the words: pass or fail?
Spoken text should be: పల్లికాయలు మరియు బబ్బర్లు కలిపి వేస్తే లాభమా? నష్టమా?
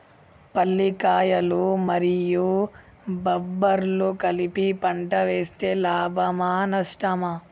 fail